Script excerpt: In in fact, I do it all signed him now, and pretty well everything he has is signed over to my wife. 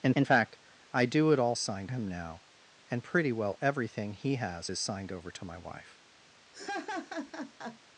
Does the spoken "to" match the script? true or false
true